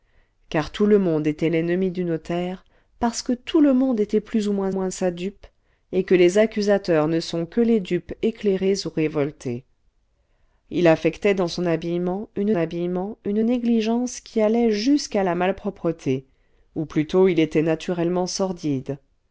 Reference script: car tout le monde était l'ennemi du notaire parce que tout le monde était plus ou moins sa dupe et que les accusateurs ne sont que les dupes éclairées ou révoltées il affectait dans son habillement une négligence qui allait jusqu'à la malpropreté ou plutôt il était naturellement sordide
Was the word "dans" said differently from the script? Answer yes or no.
no